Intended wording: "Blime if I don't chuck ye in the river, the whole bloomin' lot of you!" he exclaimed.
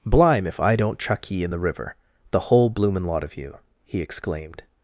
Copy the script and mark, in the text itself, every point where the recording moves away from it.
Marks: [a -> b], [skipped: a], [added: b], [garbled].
"Blime if I don't chuck ye in the river, the whole bloomin' lot of you!" he exclaimed.